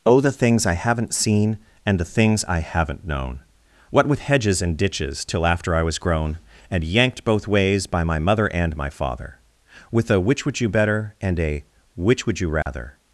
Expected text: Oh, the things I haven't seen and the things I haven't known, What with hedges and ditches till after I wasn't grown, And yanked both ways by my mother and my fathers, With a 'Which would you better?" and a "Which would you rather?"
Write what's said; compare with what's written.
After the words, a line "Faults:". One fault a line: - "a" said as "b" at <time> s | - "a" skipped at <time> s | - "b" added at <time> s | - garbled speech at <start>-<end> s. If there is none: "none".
Oh, the things I haven't seen and the things I haven't known, What with hedges and ditches till after I was grown, And yanked both ways by my mother and my father, With a 'Which would you better?" and a "Which would you rather?"
Faults:
- "wasn't" said as "was" at 5.8 s
- "fathers" said as "father" at 8.9 s